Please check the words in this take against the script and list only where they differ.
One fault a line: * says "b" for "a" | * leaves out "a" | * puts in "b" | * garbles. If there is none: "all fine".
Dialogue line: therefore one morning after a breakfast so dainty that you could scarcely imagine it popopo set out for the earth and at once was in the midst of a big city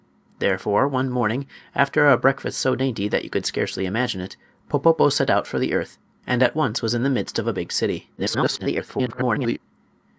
* garbles